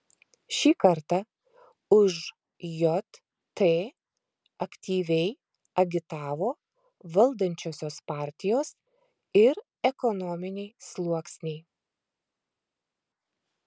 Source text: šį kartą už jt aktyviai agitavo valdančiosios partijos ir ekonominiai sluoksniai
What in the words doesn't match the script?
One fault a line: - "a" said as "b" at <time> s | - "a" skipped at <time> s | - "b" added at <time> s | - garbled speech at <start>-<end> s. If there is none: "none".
none